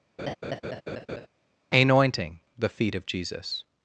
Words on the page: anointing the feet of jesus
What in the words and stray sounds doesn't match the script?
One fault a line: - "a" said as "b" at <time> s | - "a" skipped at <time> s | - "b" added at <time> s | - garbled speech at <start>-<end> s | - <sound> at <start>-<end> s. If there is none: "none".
- laugh at 0.2-1.3 s